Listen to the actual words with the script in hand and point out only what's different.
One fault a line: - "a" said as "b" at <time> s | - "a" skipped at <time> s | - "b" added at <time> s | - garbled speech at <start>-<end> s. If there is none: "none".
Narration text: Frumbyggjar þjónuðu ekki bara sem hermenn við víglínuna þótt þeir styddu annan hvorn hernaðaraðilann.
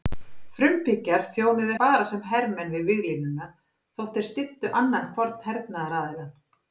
- "ekki" skipped at 1.7 s